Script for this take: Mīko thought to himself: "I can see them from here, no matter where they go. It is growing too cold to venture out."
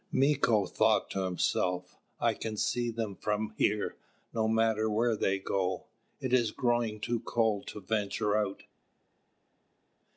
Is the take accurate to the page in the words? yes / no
yes